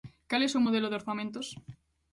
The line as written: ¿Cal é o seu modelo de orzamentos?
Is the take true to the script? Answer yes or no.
yes